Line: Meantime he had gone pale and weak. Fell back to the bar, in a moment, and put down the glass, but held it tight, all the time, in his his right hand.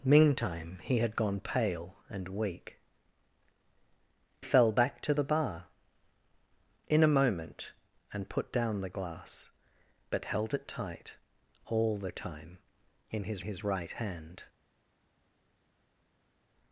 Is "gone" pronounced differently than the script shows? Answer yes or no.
no